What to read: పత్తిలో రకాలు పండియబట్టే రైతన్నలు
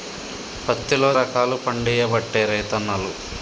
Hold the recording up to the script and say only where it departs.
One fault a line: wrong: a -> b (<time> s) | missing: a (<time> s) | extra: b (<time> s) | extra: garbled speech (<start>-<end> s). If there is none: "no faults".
no faults